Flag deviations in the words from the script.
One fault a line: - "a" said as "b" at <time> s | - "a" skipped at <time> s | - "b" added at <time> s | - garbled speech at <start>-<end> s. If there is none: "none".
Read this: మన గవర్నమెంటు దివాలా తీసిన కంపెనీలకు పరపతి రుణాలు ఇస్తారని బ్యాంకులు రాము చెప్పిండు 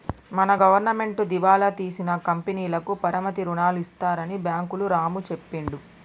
none